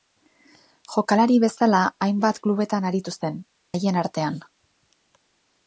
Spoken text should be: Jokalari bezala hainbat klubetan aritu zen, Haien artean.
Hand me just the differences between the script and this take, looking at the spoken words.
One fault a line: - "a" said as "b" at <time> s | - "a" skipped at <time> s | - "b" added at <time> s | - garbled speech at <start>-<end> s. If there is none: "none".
none